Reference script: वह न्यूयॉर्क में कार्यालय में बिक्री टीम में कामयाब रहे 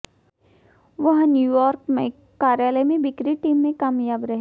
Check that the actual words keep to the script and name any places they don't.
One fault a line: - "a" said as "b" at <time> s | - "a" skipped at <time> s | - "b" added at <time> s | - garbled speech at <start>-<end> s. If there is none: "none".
none